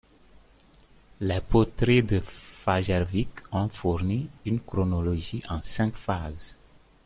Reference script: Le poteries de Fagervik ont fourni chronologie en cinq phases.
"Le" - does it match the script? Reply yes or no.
no